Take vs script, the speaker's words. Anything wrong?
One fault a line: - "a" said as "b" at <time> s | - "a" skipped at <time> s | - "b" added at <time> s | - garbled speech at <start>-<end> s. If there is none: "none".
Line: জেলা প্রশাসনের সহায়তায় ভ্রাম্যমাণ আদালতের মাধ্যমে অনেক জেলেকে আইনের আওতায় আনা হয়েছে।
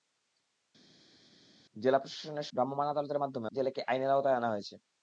- "সহায়তায়" skipped at 2.5 s
- "অনেক" skipped at 3.5 s